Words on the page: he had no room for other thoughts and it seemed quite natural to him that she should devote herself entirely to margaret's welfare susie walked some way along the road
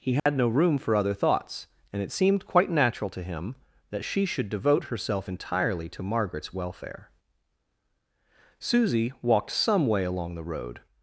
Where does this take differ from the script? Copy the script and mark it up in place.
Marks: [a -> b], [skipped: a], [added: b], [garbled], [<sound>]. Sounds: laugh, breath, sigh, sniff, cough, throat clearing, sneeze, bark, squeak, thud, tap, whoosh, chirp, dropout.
he had [dropout] no room for other thoughts and it seemed quite natural to him that she should devote herself entirely to margaret's welfare susie walked some way along the road